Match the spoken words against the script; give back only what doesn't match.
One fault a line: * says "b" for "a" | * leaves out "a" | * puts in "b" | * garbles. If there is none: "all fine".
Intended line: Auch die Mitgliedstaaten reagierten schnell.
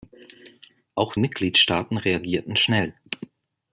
* leaves out "die"